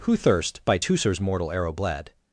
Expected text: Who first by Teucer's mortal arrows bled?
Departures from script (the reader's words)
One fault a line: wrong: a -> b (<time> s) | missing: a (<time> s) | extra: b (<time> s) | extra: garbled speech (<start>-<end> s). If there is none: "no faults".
wrong: first -> thirst (0.2 s)
wrong: arrows -> arrow (1.5 s)